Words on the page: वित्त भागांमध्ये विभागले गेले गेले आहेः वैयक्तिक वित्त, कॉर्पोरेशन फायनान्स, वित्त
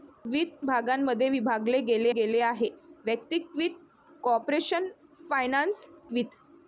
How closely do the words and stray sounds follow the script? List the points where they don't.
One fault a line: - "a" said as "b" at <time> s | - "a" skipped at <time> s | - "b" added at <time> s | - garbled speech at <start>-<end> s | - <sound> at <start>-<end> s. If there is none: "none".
none